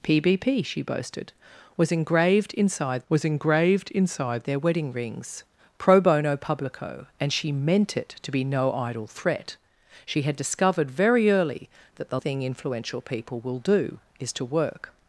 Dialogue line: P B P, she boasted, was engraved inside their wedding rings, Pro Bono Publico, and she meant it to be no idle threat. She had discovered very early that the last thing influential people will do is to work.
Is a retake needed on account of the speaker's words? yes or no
yes